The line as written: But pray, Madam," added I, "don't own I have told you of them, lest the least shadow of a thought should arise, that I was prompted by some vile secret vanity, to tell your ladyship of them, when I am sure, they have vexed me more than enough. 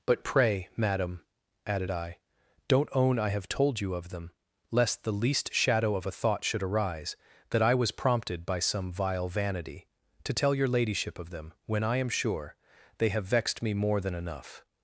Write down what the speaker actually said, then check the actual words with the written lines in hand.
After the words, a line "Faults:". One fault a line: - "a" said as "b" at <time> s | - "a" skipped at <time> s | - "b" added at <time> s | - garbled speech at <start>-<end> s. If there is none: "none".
But pray, Madam," added I, "don't own I have told you of them, lest the least shadow of a thought should arise, that I was prompted by some vile vanity, to tell your ladyship of them, when I am sure, they have vexed me more than enough.
Faults:
- "secret" skipped at 9.3 s